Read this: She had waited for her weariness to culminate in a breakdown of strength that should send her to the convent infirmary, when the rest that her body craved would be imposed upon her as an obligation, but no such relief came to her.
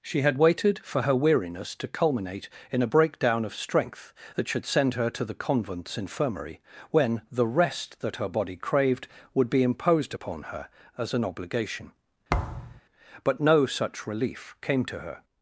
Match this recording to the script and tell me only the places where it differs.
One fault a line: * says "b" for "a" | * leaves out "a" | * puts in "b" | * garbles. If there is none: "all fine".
* says "convents" for "convent"